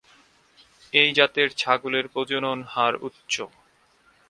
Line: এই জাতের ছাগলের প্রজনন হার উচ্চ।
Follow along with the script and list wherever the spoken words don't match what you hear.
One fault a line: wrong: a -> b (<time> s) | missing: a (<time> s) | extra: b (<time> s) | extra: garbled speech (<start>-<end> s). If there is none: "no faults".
no faults